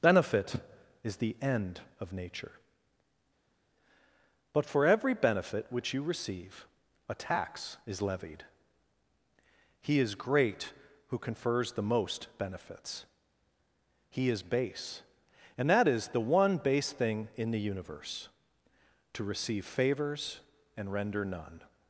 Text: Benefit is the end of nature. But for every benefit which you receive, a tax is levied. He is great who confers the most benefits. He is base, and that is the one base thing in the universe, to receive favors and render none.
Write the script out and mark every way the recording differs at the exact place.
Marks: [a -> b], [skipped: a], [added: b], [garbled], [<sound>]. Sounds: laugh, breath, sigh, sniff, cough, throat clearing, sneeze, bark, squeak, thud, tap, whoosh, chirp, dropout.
Benefit is the end of nature. But for every benefit which you receive, a tax is levied. He is great who confers the most benefits. He is base, and that is the one base thing in the universe, to receive favors and render none.